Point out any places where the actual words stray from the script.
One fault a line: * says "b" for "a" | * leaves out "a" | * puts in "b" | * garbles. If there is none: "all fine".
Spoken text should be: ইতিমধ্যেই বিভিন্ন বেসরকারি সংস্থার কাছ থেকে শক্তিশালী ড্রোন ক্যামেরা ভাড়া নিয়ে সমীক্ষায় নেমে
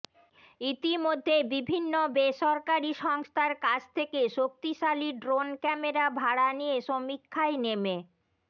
all fine